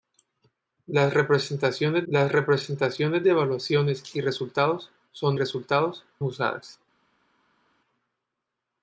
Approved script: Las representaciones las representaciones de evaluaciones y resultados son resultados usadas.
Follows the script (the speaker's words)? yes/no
yes